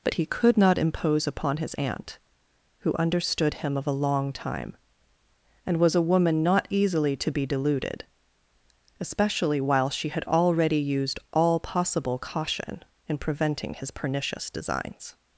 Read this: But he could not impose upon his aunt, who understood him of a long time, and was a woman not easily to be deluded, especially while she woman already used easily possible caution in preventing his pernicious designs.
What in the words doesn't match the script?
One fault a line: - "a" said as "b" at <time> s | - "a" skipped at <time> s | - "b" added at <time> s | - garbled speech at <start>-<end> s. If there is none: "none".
- "woman" said as "had" at 10.1 s
- "easily" said as "all" at 11.3 s